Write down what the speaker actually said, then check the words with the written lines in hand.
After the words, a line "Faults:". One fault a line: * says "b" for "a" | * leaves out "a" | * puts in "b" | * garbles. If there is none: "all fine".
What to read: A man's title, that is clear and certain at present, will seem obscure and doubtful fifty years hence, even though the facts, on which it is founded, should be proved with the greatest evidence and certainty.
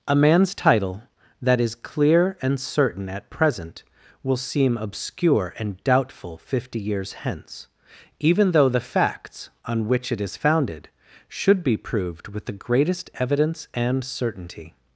A man's title, that is clear and certain at present, will seem obscure and doubtful fifty years hence, even though the facts, on which it is founded, should be proved with the greatest evidence and certainty.
Faults:
all fine